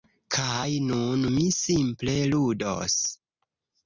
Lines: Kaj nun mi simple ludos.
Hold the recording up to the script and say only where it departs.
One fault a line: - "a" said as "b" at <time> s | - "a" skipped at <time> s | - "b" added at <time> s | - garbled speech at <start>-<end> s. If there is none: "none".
none